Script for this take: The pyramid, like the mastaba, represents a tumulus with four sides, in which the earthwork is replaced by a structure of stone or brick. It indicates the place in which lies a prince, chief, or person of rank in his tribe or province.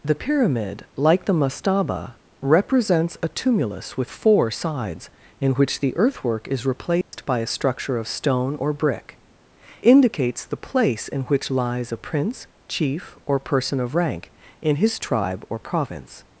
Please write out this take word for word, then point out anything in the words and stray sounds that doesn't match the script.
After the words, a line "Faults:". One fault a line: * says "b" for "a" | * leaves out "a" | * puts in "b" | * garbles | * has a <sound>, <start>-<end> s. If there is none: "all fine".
The pyramid, like the mastaba, represents a tumulus with four sides, in which the earthwork is replaced by a structure of stone or brick. Indicates the place in which lies a prince, chief, or person of rank in his tribe or province.
Faults:
* has a dropout, 7.0-7.1 s
* leaves out "It"